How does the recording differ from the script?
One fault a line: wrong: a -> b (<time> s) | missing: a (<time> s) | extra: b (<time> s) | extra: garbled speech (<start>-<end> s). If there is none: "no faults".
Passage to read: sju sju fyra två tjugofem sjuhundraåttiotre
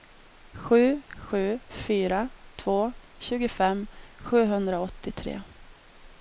no faults